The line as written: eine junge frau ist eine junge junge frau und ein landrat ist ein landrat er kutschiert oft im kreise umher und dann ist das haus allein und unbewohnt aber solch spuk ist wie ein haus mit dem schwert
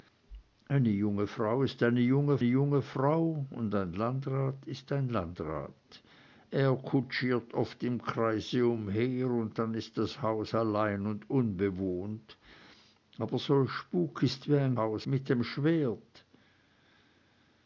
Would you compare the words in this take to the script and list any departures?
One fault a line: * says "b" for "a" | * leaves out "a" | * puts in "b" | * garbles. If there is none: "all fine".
all fine